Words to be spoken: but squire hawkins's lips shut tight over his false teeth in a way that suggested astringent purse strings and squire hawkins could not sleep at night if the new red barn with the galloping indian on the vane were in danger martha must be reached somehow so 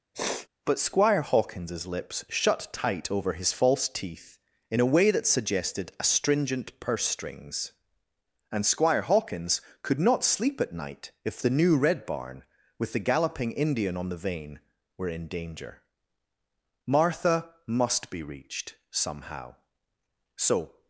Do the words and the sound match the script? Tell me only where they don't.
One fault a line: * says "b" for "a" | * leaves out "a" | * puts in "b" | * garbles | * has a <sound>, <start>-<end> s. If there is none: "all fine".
* has a sniff, 0.1-0.5 s